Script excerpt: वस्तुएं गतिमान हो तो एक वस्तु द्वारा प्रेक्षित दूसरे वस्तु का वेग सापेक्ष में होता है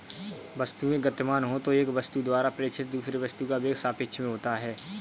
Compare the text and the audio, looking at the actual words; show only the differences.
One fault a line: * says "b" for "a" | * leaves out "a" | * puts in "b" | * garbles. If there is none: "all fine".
all fine